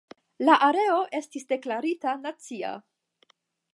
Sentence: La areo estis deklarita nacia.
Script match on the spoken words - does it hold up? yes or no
yes